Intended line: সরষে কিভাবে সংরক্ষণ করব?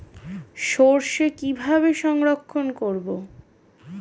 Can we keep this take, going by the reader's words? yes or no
yes